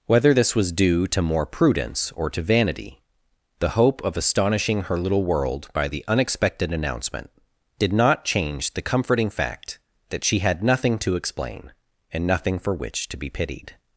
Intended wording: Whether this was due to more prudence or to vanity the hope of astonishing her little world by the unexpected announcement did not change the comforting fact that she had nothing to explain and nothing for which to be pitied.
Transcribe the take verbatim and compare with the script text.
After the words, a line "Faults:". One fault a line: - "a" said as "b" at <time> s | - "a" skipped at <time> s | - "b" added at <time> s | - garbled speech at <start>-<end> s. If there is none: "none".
Whether this was due to more prudence or to vanity the hope of astonishing her little world by the unexpected announcement did not change the comforting fact that she had nothing to explain and nothing for which to be pitied.
Faults:
none